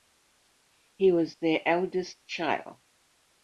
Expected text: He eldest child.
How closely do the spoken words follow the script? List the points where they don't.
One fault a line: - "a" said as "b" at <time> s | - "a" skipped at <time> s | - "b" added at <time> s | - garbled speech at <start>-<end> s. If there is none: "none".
- "was their" added at 1.1 s